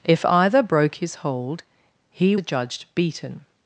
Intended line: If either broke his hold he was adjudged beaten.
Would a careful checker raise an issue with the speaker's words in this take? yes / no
yes